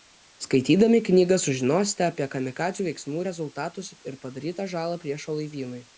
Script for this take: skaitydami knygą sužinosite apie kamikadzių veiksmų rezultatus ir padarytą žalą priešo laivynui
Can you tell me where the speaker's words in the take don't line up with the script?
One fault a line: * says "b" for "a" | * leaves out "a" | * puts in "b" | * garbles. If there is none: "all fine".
all fine